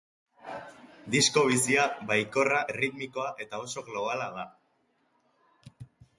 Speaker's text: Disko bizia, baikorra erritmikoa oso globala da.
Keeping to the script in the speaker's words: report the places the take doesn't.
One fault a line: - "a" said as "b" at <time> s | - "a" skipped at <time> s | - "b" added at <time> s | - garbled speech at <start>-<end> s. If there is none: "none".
- "eta" added at 3.5 s